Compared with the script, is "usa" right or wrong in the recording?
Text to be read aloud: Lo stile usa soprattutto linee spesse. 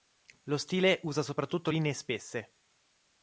right